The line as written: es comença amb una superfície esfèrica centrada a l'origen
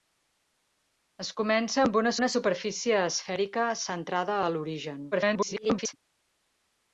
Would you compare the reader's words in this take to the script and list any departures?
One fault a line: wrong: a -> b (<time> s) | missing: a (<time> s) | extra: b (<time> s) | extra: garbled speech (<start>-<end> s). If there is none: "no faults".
extra: una (2.2 s)
extra: garbled speech (5.1-5.9 s)